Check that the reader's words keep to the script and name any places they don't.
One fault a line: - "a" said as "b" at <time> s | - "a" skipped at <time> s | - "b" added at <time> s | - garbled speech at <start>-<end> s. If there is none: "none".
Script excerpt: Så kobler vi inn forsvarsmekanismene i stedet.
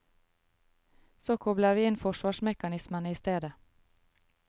none